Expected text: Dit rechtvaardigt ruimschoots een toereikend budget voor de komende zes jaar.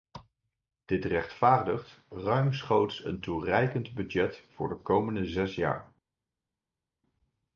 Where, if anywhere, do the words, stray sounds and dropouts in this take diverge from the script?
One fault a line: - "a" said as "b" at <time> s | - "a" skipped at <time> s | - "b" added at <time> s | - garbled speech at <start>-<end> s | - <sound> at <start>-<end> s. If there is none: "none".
none